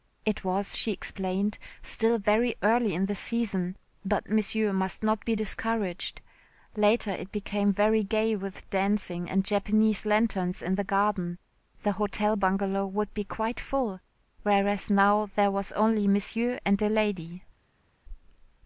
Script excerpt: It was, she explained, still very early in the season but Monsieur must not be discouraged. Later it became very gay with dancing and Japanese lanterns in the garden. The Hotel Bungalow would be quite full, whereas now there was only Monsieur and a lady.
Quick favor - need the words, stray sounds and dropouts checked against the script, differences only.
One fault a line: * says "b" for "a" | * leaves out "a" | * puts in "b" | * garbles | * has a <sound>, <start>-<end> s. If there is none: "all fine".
all fine